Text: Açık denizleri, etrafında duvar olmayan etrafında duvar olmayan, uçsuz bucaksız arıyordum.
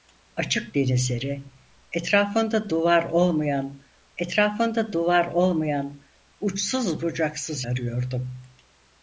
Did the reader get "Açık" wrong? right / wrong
right